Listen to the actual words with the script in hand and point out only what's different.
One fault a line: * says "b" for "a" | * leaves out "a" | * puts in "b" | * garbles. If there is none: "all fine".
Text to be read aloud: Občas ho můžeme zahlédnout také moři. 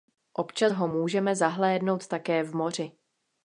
* puts in "v"